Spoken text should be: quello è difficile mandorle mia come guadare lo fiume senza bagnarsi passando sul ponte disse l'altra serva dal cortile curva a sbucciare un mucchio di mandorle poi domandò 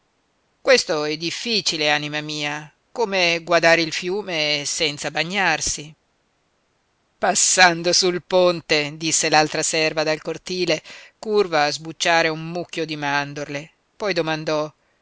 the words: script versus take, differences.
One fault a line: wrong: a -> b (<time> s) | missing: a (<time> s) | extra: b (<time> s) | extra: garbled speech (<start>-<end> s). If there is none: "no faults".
wrong: quello -> questo (0.6 s)
wrong: mandorle -> anima (1.9 s)
wrong: lo -> il (3.8 s)